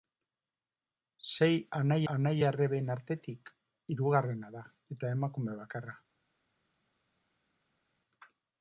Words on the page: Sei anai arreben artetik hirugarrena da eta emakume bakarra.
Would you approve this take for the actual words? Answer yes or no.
no